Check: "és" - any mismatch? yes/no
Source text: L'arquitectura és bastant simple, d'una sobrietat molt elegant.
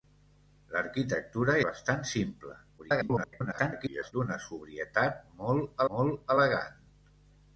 yes